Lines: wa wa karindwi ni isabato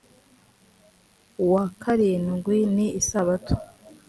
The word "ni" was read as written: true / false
true